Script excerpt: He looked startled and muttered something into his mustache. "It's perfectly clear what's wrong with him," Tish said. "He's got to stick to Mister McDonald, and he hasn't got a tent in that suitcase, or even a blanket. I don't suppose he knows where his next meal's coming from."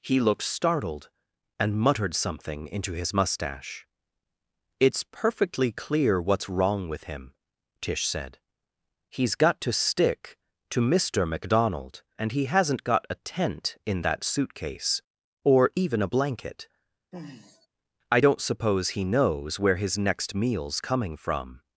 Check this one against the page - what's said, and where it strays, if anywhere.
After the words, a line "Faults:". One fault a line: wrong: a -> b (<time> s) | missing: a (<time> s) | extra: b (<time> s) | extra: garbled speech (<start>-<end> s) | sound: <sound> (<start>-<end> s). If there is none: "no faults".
He looked startled and muttered something into his mustache. "It's perfectly clear what's wrong with him," Tish said. "He's got to stick to Mister McDonald, and he hasn't got a tent in that suitcase, or even a blanket. I don't suppose he knows where his next meal's coming from."
Faults:
sound: sigh (17.1-17.7 s)